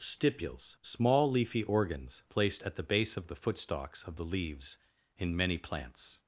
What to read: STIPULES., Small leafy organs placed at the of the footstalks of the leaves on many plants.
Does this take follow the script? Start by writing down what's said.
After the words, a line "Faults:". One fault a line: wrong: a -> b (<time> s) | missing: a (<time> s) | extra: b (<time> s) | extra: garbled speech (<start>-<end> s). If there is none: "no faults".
STIPULES., Small leafy organs placed at the base of the footstalks of the leaves in many plants.
Faults:
extra: base (2.8 s)
wrong: on -> in (5.2 s)